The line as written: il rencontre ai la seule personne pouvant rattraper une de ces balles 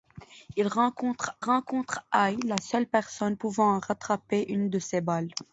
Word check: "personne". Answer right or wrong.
right